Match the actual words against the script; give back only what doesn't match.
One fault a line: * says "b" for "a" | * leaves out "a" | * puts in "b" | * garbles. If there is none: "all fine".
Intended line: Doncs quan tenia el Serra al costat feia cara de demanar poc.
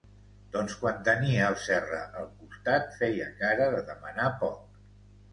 all fine